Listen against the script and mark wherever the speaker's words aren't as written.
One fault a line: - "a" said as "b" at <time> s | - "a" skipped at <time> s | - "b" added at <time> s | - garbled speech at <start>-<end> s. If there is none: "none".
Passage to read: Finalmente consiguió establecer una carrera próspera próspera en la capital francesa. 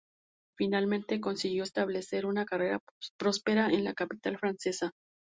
- "próspera" skipped at 3.7 s